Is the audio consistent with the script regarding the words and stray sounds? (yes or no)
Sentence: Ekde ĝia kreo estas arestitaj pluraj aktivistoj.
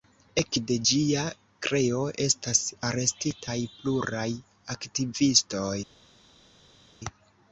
yes